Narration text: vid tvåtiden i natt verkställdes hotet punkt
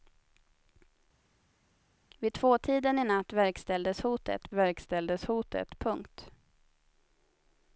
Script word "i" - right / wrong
right